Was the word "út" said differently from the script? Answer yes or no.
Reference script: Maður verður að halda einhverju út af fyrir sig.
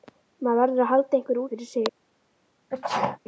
yes